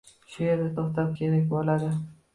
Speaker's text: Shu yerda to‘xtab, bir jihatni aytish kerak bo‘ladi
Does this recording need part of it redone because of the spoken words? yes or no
yes